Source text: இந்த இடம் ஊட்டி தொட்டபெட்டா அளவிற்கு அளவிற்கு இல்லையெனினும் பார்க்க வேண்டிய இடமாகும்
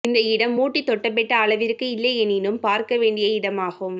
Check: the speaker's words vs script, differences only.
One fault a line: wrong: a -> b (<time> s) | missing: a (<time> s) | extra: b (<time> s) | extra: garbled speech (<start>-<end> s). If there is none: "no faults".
missing: அளவிற்கு (1.9 s)